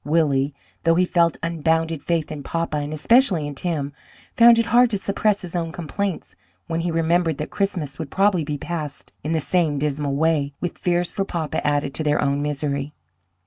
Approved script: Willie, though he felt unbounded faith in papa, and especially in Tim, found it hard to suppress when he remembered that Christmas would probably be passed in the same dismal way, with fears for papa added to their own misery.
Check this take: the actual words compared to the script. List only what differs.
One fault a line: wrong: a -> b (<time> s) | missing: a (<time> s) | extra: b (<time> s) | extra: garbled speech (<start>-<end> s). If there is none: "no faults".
extra: his own complaints (5.4 s)